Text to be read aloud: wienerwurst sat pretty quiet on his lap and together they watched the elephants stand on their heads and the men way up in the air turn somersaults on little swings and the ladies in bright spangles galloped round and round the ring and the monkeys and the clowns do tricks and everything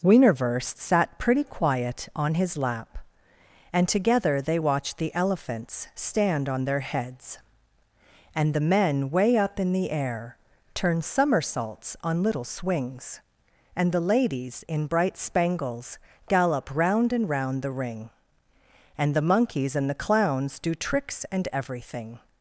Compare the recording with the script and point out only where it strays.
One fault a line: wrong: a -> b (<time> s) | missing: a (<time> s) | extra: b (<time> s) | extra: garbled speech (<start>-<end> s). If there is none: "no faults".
wrong: galloped -> gallop (16.3 s)